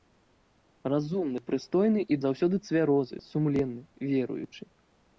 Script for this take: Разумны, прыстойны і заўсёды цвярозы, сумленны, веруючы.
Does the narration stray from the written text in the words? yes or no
no